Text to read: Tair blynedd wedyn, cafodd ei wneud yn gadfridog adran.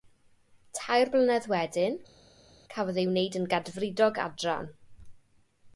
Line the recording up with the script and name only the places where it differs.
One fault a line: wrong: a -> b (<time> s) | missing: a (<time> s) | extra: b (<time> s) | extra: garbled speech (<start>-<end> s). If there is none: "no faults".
no faults